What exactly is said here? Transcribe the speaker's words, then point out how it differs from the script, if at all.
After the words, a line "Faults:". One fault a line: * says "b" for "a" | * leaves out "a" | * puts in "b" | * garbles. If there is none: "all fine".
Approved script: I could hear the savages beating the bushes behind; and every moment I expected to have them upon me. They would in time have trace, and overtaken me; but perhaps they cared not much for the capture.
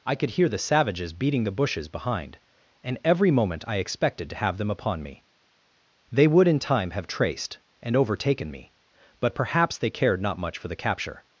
I could hear the savages beating the bushes behind; and every moment I expected to have them upon me. They would in time have traced, and overtaken me; but perhaps they cared not much for the capture.
Faults:
* says "traced" for "trace"